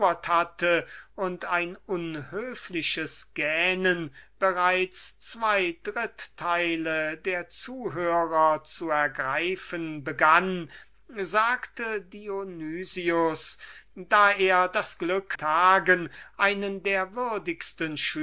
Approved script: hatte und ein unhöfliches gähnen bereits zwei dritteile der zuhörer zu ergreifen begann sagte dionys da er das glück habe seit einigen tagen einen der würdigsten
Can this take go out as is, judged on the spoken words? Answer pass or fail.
fail